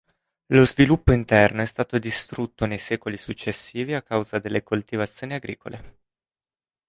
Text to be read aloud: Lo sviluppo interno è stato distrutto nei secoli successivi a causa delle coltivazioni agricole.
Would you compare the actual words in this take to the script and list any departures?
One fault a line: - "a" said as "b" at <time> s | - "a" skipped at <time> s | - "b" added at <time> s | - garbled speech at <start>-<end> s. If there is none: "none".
none